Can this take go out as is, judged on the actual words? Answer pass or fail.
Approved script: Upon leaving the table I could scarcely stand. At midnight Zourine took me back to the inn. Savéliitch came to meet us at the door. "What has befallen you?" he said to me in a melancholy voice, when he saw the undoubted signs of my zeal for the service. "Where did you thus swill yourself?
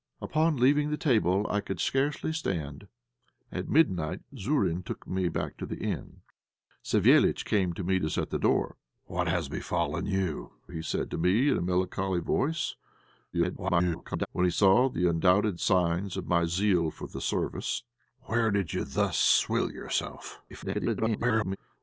fail